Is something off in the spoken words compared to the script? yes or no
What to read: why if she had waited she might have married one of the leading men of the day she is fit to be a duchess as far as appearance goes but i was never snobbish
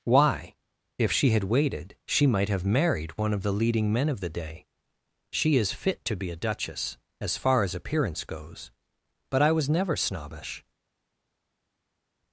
no